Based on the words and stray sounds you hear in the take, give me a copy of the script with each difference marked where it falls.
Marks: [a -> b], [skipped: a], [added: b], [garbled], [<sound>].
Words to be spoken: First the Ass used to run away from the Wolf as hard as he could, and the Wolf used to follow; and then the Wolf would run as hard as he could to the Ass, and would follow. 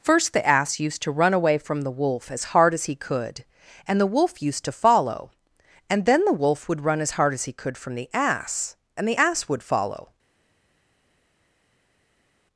First the Ass used to run away from the Wolf as hard as he could, and the Wolf used to follow; and then the Wolf would run as hard as he could [to -> from] the Ass, and [added: the Ass] would follow.